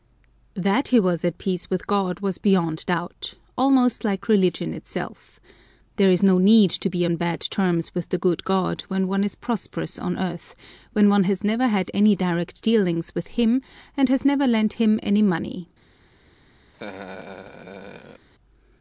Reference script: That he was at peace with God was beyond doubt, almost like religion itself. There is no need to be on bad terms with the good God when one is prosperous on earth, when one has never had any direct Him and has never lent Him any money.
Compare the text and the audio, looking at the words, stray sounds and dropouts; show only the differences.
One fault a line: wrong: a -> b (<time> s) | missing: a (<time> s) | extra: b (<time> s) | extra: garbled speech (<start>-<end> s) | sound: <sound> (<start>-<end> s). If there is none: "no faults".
extra: dealings with (12.6 s)
sound: laugh (16.7-18.3 s)